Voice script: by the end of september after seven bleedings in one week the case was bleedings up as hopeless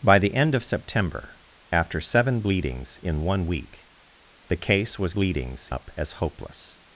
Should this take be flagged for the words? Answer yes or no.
no